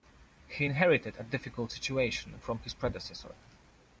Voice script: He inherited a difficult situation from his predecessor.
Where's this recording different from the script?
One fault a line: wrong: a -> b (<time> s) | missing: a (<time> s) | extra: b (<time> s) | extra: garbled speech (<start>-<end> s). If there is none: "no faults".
no faults